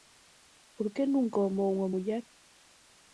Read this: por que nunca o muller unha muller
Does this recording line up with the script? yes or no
no